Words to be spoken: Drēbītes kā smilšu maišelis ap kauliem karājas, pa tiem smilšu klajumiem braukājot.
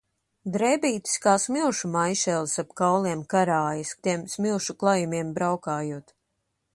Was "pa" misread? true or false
true